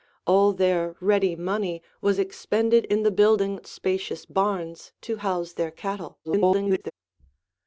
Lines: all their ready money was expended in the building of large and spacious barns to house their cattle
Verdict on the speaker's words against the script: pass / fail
fail